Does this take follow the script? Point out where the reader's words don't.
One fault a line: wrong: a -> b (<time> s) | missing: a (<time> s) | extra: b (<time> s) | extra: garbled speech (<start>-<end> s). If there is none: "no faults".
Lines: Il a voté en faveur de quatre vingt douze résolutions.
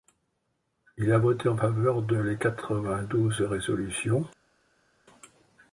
extra: les (2.2 s)